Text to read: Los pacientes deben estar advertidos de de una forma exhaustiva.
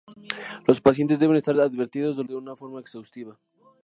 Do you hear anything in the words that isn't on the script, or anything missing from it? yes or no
no